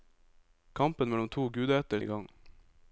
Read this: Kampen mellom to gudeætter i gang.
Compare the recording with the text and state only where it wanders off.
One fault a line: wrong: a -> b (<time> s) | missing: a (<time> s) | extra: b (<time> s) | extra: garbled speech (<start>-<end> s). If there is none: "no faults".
no faults